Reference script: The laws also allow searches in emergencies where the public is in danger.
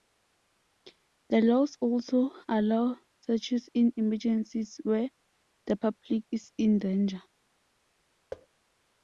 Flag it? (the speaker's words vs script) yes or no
no